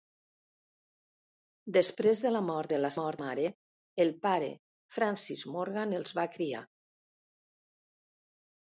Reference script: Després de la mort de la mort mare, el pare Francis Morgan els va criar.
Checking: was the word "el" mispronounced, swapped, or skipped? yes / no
no